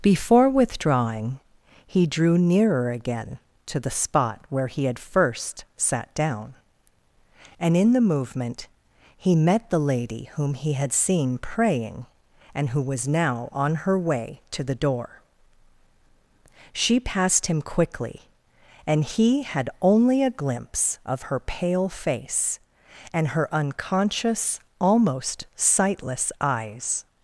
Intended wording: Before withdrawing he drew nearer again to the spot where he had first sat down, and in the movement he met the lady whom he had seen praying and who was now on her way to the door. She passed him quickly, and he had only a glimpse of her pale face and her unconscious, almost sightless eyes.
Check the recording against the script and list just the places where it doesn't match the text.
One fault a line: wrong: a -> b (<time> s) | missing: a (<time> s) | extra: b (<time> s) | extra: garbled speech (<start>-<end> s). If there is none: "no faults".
no faults